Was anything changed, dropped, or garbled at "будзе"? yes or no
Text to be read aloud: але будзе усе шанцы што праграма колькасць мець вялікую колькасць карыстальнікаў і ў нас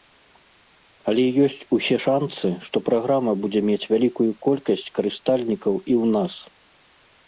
yes